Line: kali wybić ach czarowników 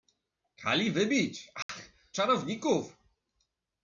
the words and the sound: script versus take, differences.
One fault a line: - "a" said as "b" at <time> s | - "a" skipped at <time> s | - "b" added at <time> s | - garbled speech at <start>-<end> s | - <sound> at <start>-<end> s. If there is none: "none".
- dropout at 1.6-1.7 s